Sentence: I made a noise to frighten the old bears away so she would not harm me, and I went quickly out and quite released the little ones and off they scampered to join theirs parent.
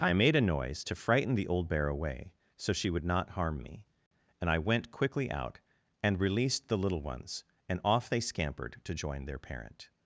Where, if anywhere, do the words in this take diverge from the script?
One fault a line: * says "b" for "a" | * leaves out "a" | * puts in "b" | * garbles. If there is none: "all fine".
* says "bear" for "bears"
* leaves out "quite"
* says "their" for "theirs"